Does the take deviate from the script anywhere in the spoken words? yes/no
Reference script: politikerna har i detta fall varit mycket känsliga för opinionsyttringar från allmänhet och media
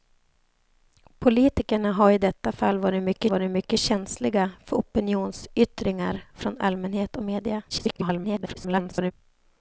yes